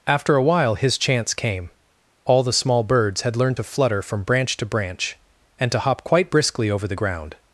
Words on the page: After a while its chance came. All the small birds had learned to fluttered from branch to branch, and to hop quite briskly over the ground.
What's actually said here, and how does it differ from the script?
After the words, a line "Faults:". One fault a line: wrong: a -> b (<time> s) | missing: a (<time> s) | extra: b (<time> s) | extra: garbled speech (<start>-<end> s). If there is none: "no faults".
After a while his chance came. All the small birds had learned to flutter from branch to branch, and to hop quite briskly over the ground.
Faults:
wrong: its -> his (0.8 s)
wrong: fluttered -> flutter (3.6 s)